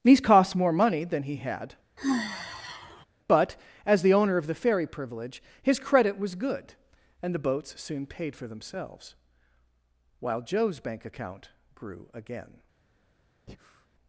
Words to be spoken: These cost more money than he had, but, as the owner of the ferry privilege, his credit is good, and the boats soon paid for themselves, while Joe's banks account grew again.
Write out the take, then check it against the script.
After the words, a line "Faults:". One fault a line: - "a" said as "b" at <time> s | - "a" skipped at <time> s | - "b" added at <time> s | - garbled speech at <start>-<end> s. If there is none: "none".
These cost more money than he had, but, as the owner of the ferry privilege, his credit was good, and the boats soon paid for themselves, while Joe's bank account grew again.
Faults:
- "is" said as "was" at 6.2 s
- "banks" said as "bank" at 10.8 s